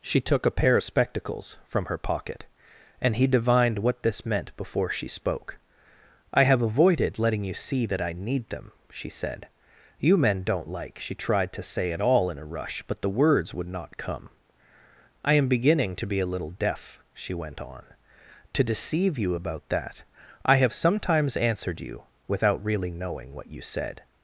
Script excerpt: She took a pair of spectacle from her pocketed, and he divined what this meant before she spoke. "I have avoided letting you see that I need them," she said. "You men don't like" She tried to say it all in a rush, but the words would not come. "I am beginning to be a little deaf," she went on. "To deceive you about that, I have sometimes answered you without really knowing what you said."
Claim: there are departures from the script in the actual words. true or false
true